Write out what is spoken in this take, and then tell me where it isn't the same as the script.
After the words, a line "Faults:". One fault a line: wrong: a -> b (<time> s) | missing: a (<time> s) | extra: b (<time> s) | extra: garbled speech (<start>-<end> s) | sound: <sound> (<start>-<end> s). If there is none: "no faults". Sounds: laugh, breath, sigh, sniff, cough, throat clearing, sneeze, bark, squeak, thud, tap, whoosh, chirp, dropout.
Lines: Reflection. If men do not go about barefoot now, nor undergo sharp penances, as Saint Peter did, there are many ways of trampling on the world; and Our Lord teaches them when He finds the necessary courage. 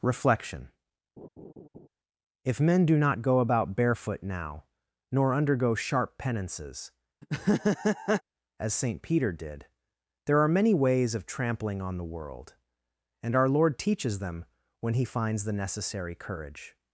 Reflection. If men do not go about barefoot now, nor undergo sharp penances, as Saint Peter did, there are many ways of trampling on the world; and Our Lord teaches them when He finds the necessary courage.
Faults:
sound: laugh (1.2-1.9 s)
sound: laugh (7.2-8.2 s)